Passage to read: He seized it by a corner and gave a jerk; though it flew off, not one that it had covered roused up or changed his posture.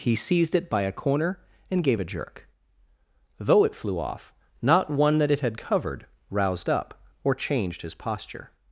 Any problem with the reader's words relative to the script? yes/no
no